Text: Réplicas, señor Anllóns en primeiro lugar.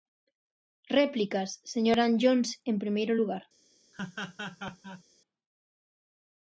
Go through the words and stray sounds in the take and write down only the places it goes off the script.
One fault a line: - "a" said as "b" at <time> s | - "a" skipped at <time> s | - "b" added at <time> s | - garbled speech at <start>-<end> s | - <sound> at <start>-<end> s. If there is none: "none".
- laugh at 3.9-5.0 s